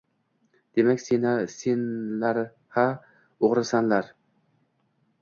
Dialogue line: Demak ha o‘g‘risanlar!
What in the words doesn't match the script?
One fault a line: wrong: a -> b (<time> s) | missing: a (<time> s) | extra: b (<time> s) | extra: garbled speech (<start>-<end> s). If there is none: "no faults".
extra: senlar (1.6 s)